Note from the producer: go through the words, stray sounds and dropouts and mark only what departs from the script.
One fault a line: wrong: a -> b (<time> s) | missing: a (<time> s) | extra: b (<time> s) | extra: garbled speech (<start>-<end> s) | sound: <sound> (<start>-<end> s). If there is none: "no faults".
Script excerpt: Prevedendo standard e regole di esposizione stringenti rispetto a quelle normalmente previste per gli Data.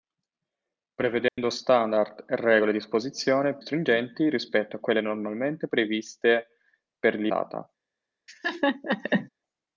sound: dropout (1.3-1.4 s)
sound: laugh (8.3-9.3 s)